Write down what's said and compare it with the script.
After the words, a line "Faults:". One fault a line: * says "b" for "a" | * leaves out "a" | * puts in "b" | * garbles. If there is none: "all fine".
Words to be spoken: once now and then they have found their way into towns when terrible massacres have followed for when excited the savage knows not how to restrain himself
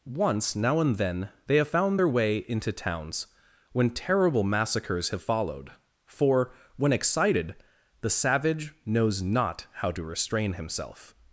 once now and then they have found their way into towns when terrible massacres have followed for when excited the savage knows not how to restrain himself
Faults:
all fine